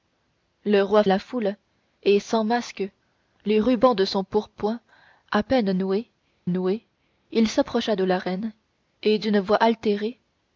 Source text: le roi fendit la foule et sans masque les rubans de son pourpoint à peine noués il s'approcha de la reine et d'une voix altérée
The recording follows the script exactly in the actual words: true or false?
false